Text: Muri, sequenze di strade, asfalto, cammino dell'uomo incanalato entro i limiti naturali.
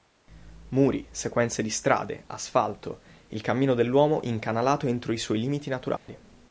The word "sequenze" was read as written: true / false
true